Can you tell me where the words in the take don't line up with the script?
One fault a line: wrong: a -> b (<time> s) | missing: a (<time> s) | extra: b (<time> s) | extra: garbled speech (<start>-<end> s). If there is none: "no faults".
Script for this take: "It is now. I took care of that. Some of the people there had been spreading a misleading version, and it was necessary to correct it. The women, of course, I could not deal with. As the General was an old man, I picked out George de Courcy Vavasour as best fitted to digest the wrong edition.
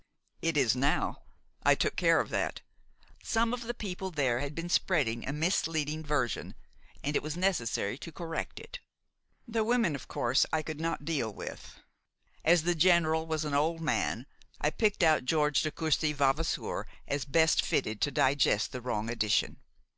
no faults